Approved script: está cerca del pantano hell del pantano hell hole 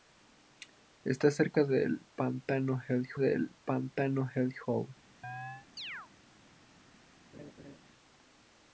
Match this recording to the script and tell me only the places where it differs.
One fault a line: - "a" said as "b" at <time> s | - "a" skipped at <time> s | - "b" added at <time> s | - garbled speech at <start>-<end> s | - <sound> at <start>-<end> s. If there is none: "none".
- chirp at 5.2-6.1 s
- laugh at 7.3-7.8 s